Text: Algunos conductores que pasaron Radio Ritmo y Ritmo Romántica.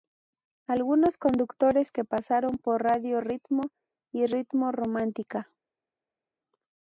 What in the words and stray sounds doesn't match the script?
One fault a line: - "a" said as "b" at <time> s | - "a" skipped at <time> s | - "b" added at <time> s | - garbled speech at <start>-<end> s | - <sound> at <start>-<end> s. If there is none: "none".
- "por" added at 2.6 s